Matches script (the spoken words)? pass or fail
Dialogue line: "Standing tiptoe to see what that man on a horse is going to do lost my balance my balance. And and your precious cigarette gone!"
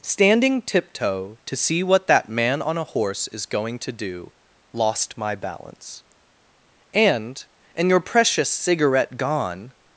fail